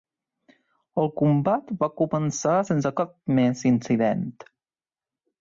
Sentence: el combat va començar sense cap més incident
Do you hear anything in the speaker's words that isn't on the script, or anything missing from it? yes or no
no